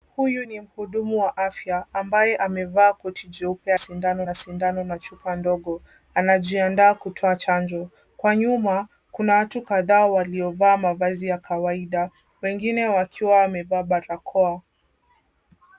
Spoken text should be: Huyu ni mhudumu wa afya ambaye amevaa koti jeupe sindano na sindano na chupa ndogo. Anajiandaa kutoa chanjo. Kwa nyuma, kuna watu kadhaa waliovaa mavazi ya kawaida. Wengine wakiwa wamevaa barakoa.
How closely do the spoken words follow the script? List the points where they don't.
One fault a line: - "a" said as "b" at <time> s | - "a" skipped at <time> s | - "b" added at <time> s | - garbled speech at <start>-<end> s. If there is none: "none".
none